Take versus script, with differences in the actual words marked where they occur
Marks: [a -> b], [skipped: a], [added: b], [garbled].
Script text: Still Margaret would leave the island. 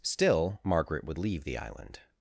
Still Margaret would leave the island.